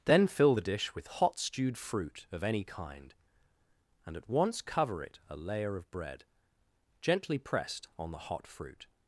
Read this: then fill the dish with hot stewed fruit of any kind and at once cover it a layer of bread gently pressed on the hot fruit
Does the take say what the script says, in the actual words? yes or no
yes